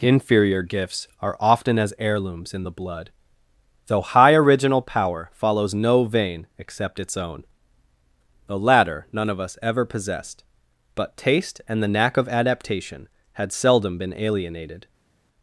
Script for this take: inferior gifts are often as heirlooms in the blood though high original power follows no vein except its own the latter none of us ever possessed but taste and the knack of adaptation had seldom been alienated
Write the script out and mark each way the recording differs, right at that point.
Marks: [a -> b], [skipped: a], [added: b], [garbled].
inferior gifts are often as heirlooms in the blood though high original power follows no vein except its own the latter none of us ever possessed but taste and the knack of adaptation had seldom been alienated